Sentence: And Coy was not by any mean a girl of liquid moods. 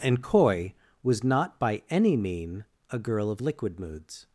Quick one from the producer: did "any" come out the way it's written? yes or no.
yes